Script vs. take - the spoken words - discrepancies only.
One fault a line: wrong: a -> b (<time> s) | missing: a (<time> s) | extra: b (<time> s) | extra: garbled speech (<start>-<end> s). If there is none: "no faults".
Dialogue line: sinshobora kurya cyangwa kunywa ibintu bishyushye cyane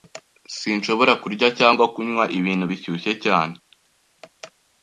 no faults